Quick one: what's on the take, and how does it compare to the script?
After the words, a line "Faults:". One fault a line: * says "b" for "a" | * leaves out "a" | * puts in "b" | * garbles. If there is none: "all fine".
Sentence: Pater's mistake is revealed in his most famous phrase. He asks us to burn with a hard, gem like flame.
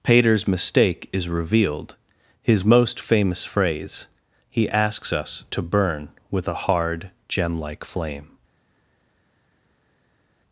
Pater's mistake is revealed his most famous phrase. He asks us to burn with a hard, gem like flame.
Faults:
* leaves out "in"